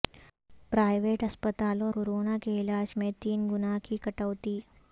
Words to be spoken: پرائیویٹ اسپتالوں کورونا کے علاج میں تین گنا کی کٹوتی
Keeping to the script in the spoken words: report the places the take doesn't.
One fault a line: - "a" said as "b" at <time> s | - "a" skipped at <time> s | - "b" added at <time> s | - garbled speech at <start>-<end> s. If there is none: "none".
none